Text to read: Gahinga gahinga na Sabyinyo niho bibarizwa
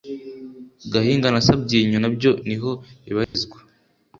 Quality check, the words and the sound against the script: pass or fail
fail